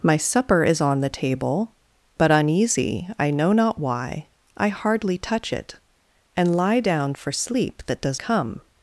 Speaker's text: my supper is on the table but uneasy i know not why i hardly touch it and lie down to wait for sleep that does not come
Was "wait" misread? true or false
true